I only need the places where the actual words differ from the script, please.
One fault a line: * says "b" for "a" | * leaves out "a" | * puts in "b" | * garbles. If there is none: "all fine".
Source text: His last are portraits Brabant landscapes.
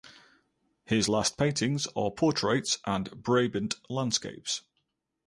* puts in "paintings"
* puts in "and"